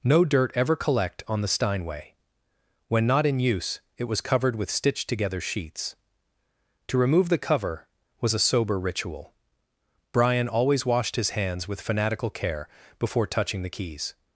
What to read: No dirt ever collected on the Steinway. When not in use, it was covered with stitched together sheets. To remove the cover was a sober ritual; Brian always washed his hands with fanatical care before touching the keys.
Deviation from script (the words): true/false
true